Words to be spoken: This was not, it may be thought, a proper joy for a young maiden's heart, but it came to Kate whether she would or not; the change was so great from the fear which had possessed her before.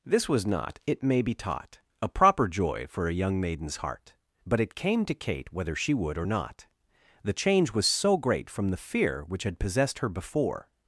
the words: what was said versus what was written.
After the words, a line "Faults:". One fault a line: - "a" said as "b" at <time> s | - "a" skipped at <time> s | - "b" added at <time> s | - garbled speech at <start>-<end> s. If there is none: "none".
This was not, it may be taught, a proper joy for a young maiden's heart, but it came to Kate whether she would or not; the change was so great from the fear which had possessed her before.
Faults:
- "thought" said as "taught" at 1.4 s